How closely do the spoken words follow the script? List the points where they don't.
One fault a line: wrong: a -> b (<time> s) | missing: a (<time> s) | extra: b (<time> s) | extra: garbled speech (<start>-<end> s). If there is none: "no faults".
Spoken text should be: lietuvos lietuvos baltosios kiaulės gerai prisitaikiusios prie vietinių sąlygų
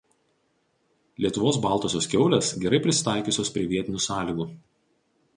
missing: lietuvos (1.6 s)